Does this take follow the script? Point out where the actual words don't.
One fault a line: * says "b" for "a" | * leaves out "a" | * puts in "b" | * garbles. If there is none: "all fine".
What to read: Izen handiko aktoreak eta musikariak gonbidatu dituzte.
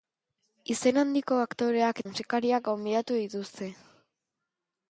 * leaves out "eta"